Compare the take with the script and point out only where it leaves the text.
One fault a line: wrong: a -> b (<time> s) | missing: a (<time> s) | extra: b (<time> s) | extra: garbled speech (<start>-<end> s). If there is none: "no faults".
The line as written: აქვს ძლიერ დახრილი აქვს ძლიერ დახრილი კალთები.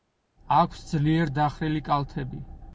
missing: აქვს ძლიერ დახრილი (1.8 s)